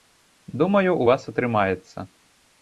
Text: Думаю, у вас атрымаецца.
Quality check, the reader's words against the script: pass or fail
pass